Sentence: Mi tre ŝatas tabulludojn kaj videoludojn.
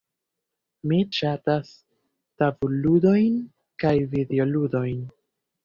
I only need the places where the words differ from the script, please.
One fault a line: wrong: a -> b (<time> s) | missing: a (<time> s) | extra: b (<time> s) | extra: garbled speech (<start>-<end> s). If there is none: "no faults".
missing: tre (1.0 s)